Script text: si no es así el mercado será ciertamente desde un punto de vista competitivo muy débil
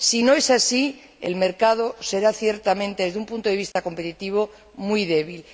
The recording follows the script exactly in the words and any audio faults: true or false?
false